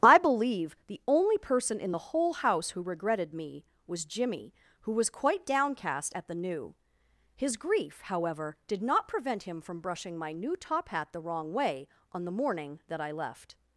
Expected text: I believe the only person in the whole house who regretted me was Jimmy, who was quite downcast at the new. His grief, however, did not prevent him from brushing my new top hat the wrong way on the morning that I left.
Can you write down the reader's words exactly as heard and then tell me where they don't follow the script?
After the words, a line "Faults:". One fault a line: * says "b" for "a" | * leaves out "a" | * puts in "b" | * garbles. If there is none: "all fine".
I believe the only person in the whole house who regretted me was Jimmy, who was quite downcast at the new. His grief, however, did not prevent him from brushing my new top hat the wrong way on the morning that I left.
Faults:
all fine